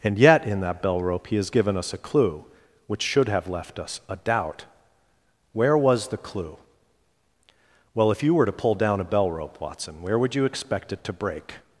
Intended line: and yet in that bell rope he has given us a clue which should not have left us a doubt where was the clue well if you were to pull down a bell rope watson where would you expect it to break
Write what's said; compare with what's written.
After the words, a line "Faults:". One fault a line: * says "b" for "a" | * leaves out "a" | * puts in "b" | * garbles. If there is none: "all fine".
and yet in that bell rope he has given us a clue which should have left us a doubt where was the clue well if you were to pull down a bell rope watson where would you expect it to break
Faults:
* leaves out "not"